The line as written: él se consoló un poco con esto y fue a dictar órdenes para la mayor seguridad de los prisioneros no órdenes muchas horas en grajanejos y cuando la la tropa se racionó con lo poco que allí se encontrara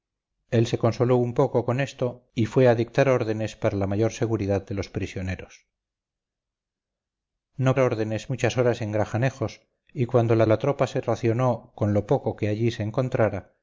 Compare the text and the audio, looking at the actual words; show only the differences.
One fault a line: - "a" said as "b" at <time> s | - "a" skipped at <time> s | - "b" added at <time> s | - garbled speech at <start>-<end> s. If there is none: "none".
none